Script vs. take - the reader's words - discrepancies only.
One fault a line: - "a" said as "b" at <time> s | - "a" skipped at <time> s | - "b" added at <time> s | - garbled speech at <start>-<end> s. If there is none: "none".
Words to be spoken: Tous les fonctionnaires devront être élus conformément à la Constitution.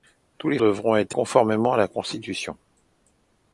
- "fonctionnaires" skipped at 0.6 s
- "élus" skipped at 1.2 s